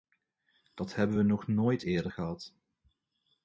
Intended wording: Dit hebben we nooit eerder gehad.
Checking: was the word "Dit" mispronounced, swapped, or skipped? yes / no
yes